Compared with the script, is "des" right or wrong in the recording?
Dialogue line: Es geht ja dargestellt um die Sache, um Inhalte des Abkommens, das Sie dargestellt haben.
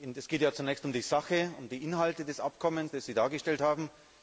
right